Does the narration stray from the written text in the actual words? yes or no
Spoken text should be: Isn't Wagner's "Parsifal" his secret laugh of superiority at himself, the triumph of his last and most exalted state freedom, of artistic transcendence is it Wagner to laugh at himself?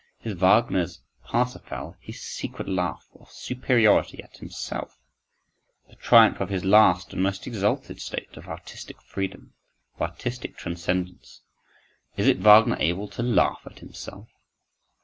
yes